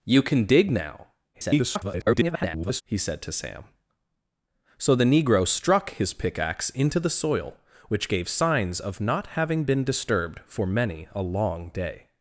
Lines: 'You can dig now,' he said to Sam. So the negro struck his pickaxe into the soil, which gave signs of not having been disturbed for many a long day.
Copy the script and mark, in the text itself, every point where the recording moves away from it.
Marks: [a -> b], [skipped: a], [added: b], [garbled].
'You can dig now,' [garbled] he said to Sam. So the negro struck his pickaxe into the soil, which gave signs of not having been disturbed for many a long day.